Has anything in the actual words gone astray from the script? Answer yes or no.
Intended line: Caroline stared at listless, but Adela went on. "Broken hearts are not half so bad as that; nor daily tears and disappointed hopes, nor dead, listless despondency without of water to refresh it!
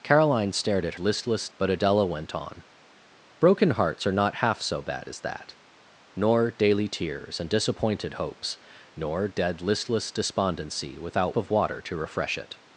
no